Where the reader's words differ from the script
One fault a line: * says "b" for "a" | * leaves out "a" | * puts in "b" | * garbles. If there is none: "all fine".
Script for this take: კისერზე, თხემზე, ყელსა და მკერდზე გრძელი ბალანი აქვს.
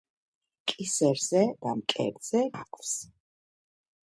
* leaves out "თხემზე ყელსა"
* leaves out "გრძელი ბალანი"